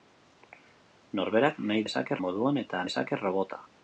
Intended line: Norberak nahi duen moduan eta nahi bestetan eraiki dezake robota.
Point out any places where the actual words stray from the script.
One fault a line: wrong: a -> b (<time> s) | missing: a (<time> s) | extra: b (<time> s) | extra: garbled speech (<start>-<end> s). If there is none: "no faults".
wrong: duen -> dezake (1.8 s)
missing: nahi bestetan eraiki (2.8 s)